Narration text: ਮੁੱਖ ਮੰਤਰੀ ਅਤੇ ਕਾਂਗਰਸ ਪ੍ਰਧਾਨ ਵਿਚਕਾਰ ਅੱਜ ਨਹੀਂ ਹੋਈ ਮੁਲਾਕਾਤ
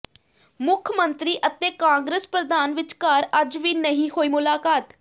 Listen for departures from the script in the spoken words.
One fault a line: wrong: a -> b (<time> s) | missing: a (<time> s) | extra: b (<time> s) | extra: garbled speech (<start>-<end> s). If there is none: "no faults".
extra: ਵੀ (3.6 s)